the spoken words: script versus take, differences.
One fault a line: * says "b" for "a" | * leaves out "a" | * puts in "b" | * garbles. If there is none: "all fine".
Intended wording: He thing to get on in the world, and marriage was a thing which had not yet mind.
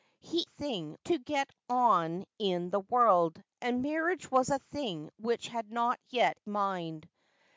all fine